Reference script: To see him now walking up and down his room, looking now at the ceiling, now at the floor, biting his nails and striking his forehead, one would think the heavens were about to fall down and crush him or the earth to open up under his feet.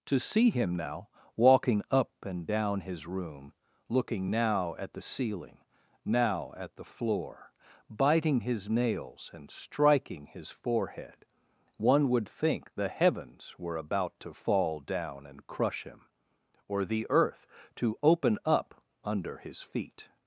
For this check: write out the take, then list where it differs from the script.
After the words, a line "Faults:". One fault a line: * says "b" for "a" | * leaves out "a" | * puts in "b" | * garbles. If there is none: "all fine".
To see him now walking up and down his room, looking now at the ceiling, now at the floor, biting his nails and striking his forehead, one would think the heavens were about to fall down and crush him or the earth to open up under his feet.
Faults:
all fine